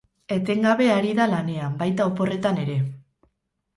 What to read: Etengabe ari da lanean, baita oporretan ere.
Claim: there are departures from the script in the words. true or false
false